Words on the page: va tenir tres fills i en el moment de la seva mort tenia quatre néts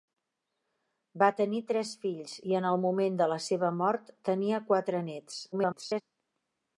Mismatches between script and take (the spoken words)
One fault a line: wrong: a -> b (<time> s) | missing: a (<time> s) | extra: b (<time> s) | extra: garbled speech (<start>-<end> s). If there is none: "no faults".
extra: garbled speech (5.5-6.0 s)